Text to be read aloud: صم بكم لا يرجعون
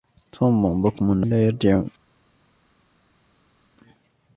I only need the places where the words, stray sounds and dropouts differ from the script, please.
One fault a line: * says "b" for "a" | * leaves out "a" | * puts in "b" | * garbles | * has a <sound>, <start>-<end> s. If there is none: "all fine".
all fine